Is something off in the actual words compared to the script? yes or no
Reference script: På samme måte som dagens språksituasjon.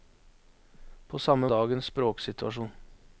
yes